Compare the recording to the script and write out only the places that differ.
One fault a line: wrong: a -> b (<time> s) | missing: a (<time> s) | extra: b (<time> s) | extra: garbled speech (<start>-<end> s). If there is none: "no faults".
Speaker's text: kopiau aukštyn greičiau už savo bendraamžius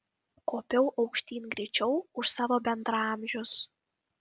no faults